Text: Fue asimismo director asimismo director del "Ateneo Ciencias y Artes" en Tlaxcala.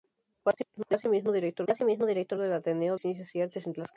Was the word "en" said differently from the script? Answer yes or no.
no